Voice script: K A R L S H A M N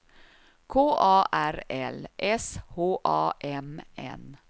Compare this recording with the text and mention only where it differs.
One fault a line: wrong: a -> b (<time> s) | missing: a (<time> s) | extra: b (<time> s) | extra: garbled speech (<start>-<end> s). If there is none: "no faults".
no faults